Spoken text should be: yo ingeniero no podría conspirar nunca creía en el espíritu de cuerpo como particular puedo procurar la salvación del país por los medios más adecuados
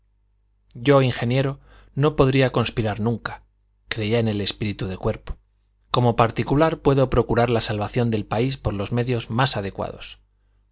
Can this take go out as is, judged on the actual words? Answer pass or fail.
pass